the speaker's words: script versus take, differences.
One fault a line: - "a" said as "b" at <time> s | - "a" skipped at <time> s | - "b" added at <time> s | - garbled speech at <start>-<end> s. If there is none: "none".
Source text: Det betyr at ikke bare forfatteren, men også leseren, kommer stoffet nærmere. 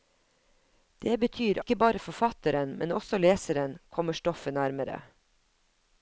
- "at" skipped at 1.6 s